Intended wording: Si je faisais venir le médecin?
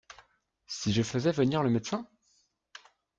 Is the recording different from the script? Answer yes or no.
no